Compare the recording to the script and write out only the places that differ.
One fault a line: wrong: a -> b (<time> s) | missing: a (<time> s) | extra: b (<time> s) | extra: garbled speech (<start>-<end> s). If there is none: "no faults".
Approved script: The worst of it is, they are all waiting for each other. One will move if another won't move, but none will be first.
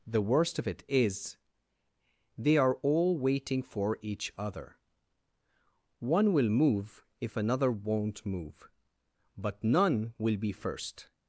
no faults